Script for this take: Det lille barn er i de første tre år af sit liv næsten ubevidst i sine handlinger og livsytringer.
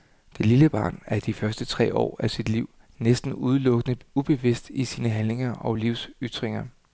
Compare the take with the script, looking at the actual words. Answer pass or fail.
fail